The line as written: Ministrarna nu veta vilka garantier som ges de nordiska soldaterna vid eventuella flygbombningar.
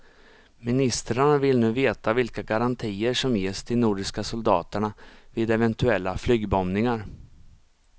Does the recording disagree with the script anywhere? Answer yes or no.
yes